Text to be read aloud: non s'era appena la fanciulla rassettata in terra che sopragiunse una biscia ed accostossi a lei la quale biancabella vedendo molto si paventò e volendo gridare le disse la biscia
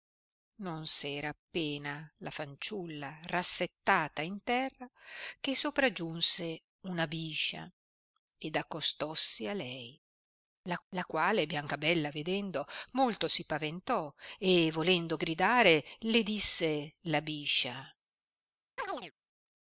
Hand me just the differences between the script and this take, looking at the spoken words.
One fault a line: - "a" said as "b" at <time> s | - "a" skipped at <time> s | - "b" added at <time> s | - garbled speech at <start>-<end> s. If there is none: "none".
- "la" added at 10.9 s